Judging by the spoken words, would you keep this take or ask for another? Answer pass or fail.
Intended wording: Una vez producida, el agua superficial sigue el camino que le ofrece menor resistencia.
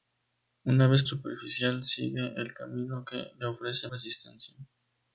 fail